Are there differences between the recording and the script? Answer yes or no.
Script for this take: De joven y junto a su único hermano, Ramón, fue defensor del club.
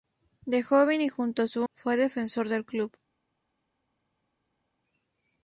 yes